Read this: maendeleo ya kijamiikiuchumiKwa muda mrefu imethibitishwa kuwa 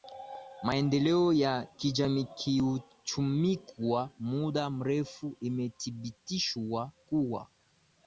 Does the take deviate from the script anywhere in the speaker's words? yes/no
no